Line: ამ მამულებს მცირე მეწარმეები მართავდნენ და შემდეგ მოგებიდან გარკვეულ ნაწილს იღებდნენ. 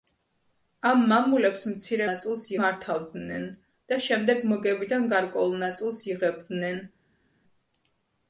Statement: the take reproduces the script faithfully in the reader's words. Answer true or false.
false